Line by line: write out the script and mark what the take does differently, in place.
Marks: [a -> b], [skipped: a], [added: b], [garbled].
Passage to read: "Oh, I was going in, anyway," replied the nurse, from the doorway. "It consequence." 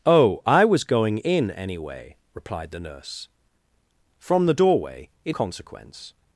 "Oh, I was going in, anyway," replied the nurse, from the doorway. "It consequence."